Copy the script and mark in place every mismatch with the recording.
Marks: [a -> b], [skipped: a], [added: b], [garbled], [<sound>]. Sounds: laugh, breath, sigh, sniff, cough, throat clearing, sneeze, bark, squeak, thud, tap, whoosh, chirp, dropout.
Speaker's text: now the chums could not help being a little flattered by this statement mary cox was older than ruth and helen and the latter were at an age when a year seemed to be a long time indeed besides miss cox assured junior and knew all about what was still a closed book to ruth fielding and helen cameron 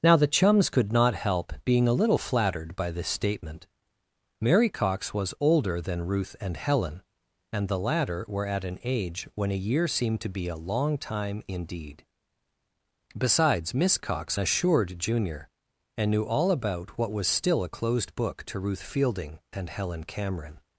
now the chums could not help being a little flattered by this statement mary cox was older than ruth and helen and the latter were at an age when a year seemed to be a long time indeed besides miss cox assured junior and knew all about what was still a closed book to ruth fielding and helen cameron